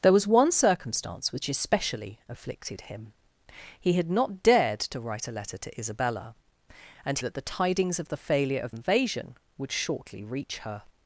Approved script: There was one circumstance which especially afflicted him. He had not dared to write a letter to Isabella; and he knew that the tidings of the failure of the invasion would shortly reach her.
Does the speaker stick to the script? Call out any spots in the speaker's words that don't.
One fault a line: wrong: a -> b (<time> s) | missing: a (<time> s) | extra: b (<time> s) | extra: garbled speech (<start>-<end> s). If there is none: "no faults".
missing: he knew (7.2 s)
missing: the (8.7 s)